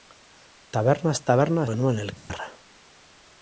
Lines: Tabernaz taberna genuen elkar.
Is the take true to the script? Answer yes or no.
yes